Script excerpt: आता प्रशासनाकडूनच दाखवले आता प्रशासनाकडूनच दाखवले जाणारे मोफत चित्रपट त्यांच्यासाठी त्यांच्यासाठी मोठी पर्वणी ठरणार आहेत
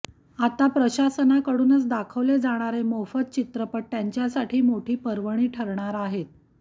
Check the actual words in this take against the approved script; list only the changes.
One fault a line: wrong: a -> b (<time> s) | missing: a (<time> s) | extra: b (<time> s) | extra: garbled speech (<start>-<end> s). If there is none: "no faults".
missing: आता प्रशासनाकडूनच दाखवले (2.4 s)
missing: त्यांच्यासाठी (4.6 s)